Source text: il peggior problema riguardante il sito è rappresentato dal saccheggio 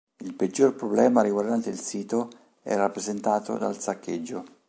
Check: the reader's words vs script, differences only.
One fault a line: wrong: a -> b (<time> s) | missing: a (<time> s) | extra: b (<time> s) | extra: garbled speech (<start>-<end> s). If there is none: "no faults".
no faults